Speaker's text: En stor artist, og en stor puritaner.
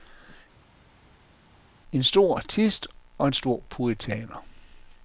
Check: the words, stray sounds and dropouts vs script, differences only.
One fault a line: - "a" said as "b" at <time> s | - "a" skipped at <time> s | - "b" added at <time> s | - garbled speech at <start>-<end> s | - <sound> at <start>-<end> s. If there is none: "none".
none